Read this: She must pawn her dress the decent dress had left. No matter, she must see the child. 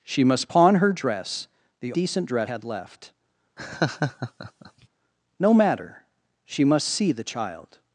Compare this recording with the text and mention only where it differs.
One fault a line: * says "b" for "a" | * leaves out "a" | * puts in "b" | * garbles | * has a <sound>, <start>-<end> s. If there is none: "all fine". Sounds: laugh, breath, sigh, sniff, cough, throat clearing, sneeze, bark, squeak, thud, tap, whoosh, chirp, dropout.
* has a laugh, 3.6-4.9 s